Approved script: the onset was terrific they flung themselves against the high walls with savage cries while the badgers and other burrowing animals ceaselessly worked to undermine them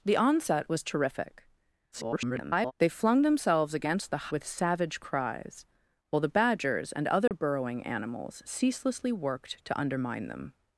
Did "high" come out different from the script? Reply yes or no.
yes